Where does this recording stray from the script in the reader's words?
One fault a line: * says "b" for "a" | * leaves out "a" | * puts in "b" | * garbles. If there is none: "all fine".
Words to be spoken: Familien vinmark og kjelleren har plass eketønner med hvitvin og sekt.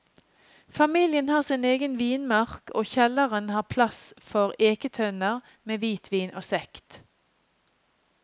* puts in "har sin egen"
* puts in "for"